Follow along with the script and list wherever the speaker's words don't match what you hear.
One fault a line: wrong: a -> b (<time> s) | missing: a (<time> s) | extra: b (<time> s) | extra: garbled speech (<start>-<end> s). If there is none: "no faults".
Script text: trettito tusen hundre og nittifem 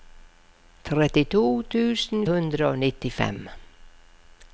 no faults